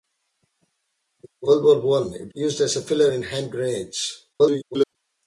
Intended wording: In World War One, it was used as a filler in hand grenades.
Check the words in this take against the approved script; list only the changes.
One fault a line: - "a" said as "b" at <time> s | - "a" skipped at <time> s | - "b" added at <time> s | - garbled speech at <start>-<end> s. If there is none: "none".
- "was" skipped at 2.3 s
- garbled speech at 4.3-5.0 s